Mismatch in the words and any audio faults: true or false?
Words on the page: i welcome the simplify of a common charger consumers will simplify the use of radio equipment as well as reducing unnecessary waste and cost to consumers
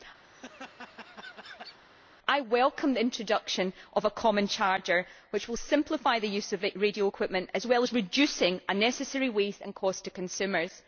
true